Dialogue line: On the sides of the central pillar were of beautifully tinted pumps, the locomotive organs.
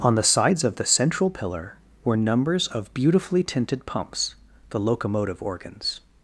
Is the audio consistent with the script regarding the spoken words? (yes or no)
no